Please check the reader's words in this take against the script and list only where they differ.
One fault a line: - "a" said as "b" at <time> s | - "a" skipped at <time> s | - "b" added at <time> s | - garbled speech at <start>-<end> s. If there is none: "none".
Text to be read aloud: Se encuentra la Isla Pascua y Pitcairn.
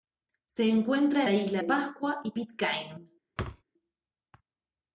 none